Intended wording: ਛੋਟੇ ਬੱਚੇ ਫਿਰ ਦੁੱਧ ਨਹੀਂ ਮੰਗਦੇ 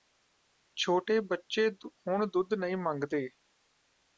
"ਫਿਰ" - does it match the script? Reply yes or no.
no